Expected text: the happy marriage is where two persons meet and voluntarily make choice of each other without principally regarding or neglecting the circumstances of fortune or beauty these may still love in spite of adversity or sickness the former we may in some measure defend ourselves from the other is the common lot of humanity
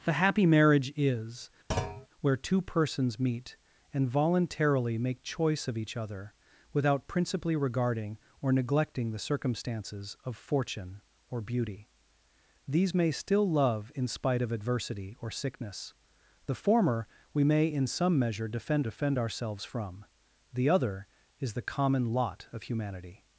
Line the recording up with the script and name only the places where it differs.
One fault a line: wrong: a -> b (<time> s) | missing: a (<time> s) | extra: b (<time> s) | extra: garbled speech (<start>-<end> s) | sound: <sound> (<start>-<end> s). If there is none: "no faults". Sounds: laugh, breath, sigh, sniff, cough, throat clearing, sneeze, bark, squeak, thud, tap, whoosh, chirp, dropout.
sound: thud (1.7-2.1 s)
extra: defend (18.8 s)